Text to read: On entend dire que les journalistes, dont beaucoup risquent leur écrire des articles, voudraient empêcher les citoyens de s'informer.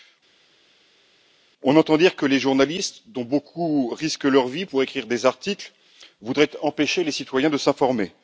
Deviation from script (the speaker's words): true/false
true